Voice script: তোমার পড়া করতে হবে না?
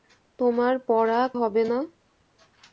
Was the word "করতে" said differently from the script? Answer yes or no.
yes